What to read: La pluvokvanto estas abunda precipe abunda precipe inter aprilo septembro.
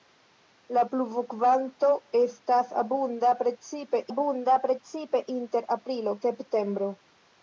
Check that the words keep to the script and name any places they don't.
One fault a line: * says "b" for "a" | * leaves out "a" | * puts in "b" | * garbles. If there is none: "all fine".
all fine